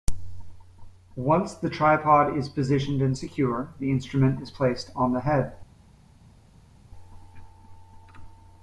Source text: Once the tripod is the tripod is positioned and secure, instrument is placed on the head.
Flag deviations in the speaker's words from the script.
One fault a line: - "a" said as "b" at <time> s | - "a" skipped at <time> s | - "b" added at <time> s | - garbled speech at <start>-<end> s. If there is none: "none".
- "the tripod is" skipped at 2.5 s
- "the" added at 3.8 s